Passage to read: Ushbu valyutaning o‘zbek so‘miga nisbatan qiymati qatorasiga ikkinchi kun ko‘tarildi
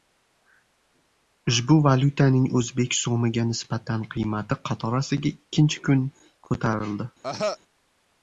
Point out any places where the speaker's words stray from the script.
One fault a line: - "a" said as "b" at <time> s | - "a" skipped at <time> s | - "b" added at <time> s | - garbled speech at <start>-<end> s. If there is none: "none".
none